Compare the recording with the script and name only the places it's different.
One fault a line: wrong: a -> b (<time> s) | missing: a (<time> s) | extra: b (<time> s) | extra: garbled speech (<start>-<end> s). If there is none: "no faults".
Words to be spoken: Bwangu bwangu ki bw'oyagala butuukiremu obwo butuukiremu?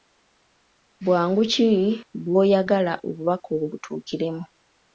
missing: bwangu (1.4 s)
wrong: butuukiremu -> obubaka (3.1 s)